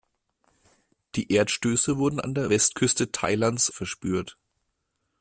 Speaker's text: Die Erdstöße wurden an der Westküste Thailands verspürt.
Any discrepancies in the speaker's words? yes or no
no